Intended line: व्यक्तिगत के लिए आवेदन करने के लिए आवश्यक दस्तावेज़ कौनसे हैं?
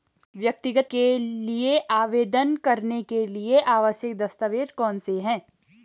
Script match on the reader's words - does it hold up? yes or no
yes